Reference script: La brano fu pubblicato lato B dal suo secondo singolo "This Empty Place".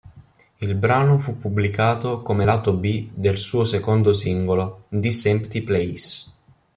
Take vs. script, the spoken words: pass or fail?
fail